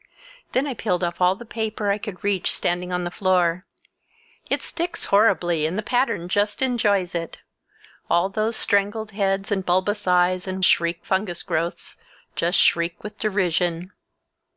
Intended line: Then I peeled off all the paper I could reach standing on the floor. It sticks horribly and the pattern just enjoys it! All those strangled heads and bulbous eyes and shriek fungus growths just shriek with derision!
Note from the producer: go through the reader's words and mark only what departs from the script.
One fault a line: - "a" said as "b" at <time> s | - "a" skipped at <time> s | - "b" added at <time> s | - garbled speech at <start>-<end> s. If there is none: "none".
none